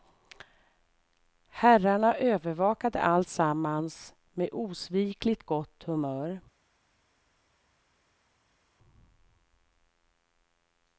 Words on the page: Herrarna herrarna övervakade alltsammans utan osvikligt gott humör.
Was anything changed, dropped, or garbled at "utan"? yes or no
yes